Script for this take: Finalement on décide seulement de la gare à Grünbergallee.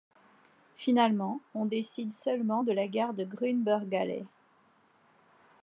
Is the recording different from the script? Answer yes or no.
yes